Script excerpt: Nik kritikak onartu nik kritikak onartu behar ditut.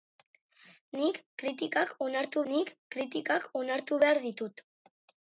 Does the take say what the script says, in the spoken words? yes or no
yes